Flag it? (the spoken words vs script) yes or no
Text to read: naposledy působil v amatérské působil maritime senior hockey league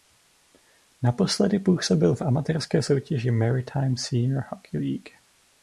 yes